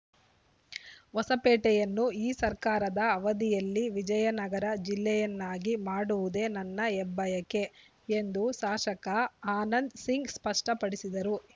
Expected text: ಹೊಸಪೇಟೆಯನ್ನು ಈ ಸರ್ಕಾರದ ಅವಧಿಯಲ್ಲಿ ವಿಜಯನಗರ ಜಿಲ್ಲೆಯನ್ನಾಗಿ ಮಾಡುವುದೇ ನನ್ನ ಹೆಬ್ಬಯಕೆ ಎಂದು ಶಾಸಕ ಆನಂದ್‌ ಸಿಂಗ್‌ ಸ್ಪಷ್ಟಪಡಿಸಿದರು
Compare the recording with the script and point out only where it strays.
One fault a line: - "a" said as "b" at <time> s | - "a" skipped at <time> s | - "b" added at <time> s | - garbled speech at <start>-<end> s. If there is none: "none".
none